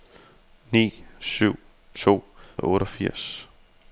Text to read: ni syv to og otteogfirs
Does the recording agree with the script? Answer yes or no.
yes